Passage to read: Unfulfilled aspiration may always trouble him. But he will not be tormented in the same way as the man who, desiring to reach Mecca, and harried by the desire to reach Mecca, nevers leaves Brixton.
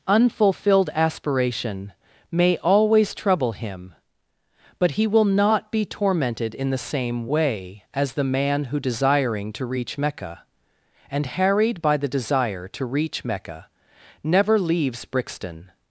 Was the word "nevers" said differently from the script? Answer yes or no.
yes